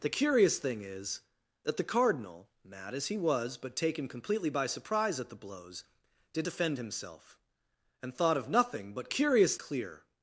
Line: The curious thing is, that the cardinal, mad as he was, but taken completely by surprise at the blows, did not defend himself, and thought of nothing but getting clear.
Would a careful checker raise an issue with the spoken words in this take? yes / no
yes